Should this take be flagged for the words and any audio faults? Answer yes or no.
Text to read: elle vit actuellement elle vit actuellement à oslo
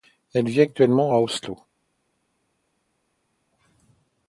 yes